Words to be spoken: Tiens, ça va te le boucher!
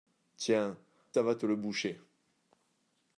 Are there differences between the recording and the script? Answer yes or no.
no